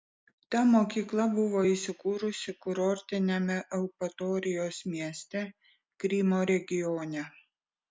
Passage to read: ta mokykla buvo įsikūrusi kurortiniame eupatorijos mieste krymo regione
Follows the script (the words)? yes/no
yes